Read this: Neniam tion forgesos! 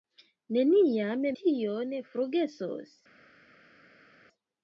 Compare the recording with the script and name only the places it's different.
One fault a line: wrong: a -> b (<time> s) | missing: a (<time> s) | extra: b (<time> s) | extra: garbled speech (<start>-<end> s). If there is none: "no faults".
no faults